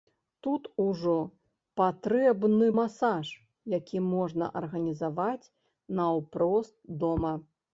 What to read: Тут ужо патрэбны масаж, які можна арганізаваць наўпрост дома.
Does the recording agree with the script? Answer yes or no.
yes